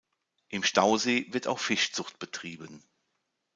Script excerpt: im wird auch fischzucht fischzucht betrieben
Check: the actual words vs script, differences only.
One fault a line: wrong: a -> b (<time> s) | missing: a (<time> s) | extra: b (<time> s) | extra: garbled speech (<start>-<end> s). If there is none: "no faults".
extra: stausee (0.6 s)
missing: fischzucht (2.2 s)